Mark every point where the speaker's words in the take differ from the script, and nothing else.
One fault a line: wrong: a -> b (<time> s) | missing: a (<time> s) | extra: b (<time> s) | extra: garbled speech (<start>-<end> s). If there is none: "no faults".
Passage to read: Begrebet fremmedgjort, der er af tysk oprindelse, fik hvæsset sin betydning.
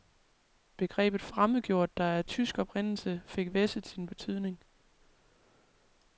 no faults